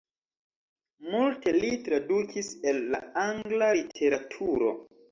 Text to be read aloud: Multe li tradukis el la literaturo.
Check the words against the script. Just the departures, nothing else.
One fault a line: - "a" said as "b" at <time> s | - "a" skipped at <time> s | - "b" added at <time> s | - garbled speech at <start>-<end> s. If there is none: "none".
- "angla" added at 3.3 s